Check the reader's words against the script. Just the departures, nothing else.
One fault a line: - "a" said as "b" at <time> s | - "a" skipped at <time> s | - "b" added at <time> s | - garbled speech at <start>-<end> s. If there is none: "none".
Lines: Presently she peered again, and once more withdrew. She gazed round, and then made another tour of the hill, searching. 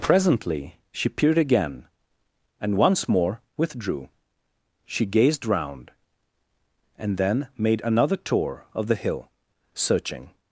none